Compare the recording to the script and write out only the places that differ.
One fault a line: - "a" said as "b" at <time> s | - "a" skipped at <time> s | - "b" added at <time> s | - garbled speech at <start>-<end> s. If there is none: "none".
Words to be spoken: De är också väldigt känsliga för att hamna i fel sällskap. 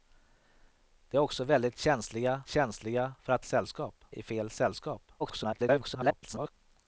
- "känsliga" added at 2.5 s
- "hamna" said as "sällskap" at 3.4 s
- garbled speech at 5.2-6.5 s